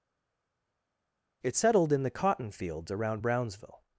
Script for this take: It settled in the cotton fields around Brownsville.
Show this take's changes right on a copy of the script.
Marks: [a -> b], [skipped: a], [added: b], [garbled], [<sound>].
It settled in the cotton fields around Brownsville.